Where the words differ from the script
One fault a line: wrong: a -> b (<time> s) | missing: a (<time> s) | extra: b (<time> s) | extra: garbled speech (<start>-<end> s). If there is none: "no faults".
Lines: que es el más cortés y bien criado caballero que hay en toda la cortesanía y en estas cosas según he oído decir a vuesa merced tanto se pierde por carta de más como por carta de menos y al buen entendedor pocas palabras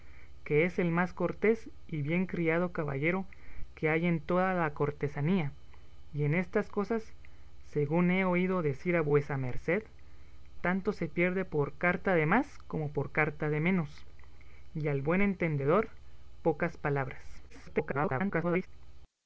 extra: garbled speech (17.5-18.7 s)